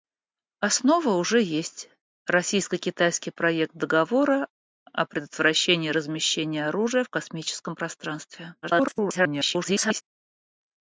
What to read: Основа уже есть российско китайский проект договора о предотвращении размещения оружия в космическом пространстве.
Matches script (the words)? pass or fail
fail